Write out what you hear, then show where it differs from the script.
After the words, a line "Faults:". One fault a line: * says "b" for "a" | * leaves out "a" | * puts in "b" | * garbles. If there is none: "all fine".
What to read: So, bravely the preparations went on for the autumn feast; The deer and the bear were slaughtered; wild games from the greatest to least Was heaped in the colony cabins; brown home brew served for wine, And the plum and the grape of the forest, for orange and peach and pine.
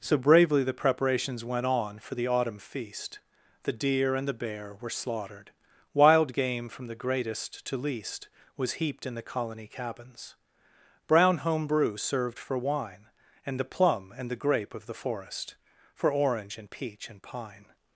So, bravely the preparations went on for the autumn feast; The deer and the bear were slaughtered; wild game from the greatest to least Was heaped in the colony cabins; brown home brew served for wine, And the plum and the grape of the forest, for orange and peach and pine.
Faults:
* says "game" for "games"